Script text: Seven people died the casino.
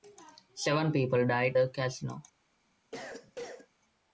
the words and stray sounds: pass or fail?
fail